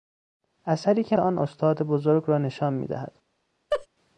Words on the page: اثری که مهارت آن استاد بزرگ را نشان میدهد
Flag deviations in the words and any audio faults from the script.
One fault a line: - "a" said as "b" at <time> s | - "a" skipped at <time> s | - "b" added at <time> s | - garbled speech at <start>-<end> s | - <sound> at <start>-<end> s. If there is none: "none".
- "مهارت" skipped at 1.2 s
- laugh at 3.7-3.9 s